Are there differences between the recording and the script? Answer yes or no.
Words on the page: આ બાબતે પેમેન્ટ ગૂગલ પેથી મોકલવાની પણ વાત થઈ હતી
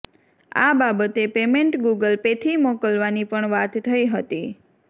no